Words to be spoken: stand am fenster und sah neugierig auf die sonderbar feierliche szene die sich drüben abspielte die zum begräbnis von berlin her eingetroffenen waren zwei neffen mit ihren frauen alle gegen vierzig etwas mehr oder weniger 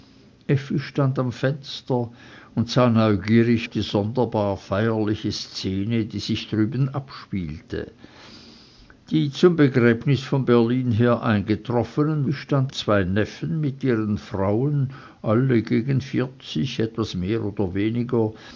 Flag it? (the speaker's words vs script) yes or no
yes